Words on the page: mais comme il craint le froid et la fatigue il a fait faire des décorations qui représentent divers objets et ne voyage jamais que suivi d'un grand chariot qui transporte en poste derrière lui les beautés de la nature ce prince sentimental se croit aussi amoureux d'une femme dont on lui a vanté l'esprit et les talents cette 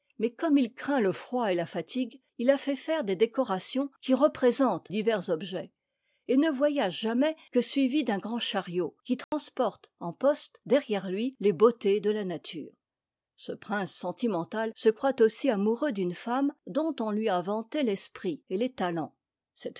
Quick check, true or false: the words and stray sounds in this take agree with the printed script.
false